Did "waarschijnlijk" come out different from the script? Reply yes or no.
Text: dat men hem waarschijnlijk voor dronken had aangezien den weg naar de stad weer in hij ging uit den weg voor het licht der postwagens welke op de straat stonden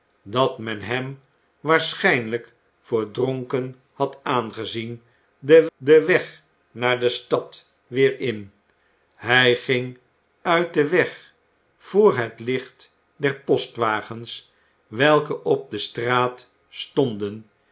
no